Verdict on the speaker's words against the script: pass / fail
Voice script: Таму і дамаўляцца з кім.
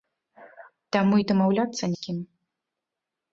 pass